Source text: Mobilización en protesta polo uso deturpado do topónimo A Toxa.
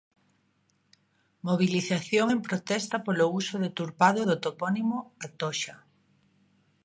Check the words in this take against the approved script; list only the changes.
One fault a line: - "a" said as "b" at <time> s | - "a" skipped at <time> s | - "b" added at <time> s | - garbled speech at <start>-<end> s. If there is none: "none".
none